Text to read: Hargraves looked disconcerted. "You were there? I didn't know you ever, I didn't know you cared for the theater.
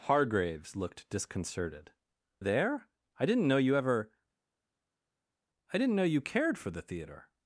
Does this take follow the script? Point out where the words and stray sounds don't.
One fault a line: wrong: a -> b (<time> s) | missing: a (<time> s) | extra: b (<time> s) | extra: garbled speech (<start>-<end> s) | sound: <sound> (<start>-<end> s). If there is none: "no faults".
missing: You were (1.9 s)